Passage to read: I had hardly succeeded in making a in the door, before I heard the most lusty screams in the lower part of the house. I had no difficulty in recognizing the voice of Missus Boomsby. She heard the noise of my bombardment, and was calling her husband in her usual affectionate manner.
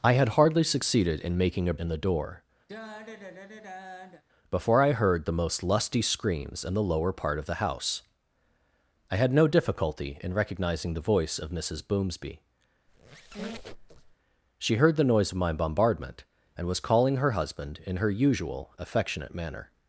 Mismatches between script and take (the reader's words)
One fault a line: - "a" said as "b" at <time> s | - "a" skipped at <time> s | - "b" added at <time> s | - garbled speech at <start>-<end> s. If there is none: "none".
none